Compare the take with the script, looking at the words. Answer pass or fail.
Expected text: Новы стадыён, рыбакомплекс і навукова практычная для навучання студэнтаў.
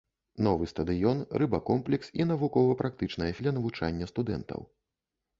pass